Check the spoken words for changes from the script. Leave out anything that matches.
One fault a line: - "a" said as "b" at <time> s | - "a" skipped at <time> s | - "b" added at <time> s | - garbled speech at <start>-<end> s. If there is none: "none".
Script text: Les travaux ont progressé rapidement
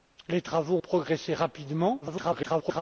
- "ont" skipped at 0.8 s
- garbled speech at 2.0-2.8 s